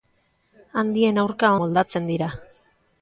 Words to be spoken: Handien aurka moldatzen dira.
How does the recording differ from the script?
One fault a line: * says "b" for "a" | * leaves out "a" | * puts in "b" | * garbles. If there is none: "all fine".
all fine